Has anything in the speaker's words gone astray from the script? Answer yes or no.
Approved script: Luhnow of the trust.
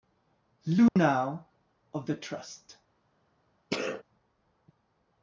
no